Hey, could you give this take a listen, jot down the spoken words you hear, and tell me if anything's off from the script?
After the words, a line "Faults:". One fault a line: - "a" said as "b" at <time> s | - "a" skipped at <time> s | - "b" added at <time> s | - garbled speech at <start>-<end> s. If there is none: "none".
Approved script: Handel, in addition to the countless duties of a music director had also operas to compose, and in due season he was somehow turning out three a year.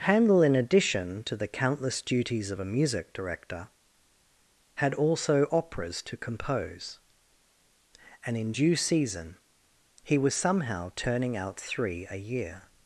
Handel, in addition to the countless duties of a music director had also operas to compose, and in due season he was somehow turning out three a year.
Faults:
none